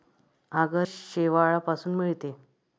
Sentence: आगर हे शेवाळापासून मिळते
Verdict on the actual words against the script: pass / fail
fail